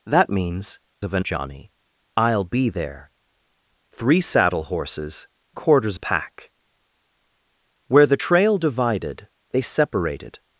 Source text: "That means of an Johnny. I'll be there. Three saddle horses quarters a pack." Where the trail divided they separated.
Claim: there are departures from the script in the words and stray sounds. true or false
false